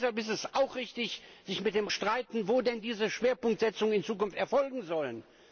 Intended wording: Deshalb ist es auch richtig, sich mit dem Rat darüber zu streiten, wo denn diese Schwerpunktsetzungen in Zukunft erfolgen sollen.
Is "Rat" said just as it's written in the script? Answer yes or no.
no